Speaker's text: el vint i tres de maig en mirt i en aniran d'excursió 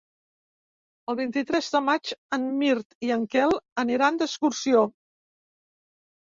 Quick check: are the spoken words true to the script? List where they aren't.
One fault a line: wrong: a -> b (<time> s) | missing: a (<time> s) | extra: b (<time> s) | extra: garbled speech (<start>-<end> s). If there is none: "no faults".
extra: quel (3.4 s)